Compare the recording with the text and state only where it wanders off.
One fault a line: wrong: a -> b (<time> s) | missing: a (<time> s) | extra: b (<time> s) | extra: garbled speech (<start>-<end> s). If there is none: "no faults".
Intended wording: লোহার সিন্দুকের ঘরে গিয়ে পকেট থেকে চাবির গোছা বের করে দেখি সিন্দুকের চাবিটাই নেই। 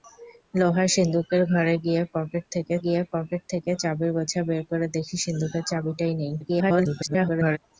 extra: গিয়ে পকেট থেকে (2.8 s)
extra: garbled speech (6.4-7.6 s)